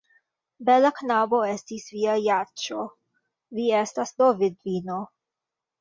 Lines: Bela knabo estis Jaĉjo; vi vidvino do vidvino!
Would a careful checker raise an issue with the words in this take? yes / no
yes